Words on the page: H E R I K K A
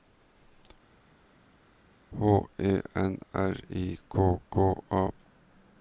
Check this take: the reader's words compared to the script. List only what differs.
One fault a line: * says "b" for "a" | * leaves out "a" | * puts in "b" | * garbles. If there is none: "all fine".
* puts in "N"